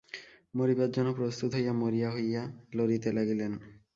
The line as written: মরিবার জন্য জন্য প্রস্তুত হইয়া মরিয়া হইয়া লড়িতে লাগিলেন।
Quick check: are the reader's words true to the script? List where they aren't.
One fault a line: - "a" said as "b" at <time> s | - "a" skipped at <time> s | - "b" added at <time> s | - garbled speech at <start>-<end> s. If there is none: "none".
- "জন্য" skipped at 1.1 s